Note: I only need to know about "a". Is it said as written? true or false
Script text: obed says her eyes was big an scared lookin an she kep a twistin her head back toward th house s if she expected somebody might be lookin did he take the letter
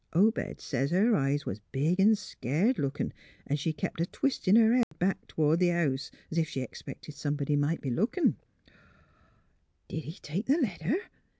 true